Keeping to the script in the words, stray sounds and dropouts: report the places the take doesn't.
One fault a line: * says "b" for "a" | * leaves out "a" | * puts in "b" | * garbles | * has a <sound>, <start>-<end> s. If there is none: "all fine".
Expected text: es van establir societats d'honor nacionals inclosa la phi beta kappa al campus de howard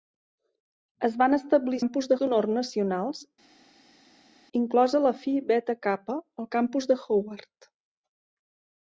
* says "campus" for "societats"